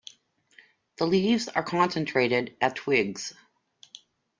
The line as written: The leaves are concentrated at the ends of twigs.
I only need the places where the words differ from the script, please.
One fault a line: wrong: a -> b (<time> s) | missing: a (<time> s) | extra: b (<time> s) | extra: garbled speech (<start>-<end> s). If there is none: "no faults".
missing: the ends of (2.8 s)